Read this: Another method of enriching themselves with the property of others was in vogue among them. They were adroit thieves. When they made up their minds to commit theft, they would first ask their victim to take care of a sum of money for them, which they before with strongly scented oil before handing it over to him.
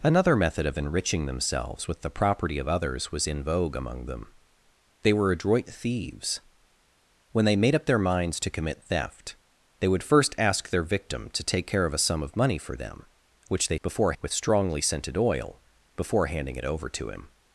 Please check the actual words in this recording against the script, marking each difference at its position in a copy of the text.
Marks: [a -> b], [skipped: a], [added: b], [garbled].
Another method of enriching themselves with the property of others was in vogue among them. They were adroit thieves. When they made up their minds to commit theft, they would first ask their victim to take care of a sum of money for them, which they before with strongly scented oil before handing it over to him.